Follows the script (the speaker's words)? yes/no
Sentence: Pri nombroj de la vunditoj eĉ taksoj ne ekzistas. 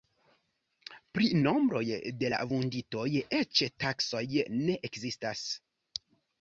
yes